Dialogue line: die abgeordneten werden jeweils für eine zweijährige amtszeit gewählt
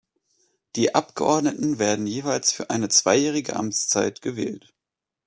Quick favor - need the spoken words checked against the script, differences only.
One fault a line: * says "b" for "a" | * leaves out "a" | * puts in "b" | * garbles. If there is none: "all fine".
all fine